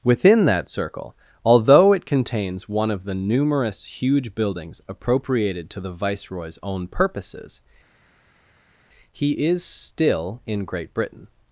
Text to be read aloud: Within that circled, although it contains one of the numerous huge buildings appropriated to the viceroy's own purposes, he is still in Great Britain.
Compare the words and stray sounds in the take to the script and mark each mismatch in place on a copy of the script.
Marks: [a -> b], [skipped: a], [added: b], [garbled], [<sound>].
Within that [circled, -> circle] although it contains one of the numerous huge buildings appropriated to the viceroy's own purposes, he is still in Great Britain.